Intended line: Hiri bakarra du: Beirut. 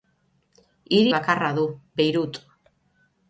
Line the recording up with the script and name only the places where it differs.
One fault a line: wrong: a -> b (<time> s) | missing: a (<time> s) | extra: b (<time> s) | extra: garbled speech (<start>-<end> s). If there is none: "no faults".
no faults